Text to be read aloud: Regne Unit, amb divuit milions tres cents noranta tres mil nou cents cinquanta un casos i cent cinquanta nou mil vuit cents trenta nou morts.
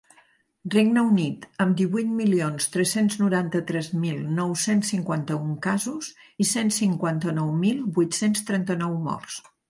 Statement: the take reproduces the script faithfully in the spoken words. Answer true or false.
true